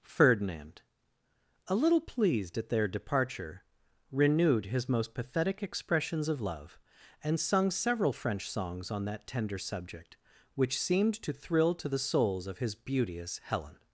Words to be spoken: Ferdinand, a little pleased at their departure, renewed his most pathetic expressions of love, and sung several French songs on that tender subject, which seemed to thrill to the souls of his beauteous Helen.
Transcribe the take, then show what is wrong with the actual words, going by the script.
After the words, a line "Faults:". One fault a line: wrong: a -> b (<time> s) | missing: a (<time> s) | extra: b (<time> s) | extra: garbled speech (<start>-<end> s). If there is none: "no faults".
Ferdinand, a little pleased at their departure, renewed his most pathetic expressions of love, and sung several French songs on that tender subject, which seemed to thrill to the souls of his beauteous Helen.
Faults:
no faults